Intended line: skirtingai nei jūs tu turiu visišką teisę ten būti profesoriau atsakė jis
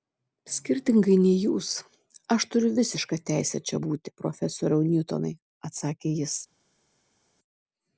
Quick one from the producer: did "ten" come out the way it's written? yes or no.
no